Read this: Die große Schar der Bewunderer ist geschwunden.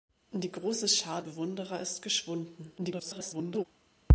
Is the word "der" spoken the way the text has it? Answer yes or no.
no